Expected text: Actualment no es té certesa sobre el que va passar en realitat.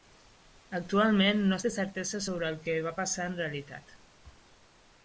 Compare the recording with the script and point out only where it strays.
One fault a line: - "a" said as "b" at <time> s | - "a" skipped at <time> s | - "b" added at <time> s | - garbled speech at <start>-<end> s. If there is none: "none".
none